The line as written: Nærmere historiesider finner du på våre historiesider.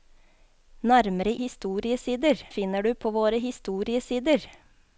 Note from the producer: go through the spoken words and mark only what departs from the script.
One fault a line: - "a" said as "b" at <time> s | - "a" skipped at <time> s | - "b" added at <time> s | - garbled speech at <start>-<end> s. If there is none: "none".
none